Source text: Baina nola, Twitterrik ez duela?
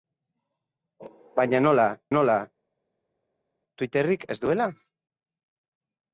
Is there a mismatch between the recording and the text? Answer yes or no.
yes